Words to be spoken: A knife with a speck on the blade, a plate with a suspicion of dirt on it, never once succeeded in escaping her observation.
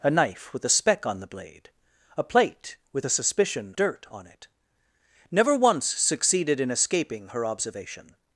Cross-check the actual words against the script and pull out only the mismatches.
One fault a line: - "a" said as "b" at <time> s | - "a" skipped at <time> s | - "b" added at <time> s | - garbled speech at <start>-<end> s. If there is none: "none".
- "of" skipped at 3.7 s